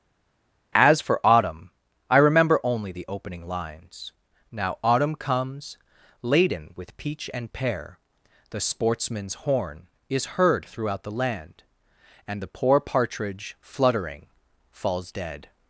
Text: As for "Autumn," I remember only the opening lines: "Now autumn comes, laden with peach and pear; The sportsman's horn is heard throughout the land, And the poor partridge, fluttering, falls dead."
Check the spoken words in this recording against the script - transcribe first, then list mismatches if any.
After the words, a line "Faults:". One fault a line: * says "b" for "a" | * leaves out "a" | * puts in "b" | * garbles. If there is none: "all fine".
As for "Autumn," I remember only the opening lines: "Now autumn comes, laden with peach and pear; The sportsman's horn is heard throughout the land, And the poor partridge, fluttering, falls dead."
Faults:
all fine